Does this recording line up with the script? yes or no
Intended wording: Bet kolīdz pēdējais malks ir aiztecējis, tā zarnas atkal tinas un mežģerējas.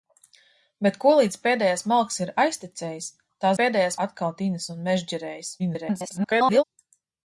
no